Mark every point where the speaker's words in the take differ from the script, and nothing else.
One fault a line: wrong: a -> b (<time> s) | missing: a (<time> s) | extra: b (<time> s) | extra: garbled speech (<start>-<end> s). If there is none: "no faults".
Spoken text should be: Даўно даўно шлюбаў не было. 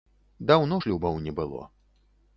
missing: даўно (0.8 s)